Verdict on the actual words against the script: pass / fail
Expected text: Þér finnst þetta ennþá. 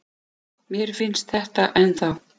fail